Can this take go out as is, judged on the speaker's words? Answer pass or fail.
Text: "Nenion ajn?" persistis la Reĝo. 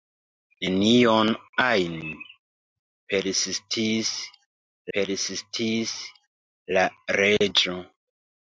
fail